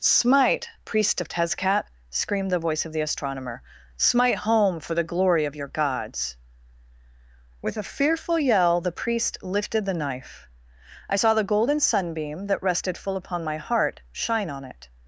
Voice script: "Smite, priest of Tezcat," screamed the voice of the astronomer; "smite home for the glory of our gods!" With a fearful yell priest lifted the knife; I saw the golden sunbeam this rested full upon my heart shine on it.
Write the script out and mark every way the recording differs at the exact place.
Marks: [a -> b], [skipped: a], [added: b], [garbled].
"Smite, priest of Tezcat," screamed the voice of the astronomer; "smite home for the glory of [our -> your] gods!" With a fearful yell [added: the] priest lifted the knife; I saw the golden sunbeam [this -> that] rested full upon my heart shine on it.